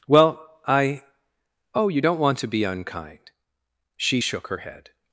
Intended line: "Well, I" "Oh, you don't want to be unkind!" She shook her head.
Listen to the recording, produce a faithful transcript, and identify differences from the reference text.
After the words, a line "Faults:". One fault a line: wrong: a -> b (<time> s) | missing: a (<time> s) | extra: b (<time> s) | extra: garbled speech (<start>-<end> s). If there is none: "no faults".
"Well, I" "Oh, you don't want to be unkind!" She shook her head.
Faults:
no faults